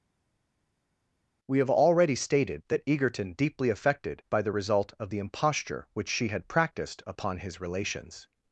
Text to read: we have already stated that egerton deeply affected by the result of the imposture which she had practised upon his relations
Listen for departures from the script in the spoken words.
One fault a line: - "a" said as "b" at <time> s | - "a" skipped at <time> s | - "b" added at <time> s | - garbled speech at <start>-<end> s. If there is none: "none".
none